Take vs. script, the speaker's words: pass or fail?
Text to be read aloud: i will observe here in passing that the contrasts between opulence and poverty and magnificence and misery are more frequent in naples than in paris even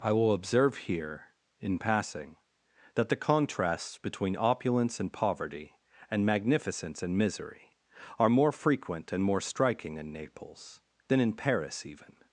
fail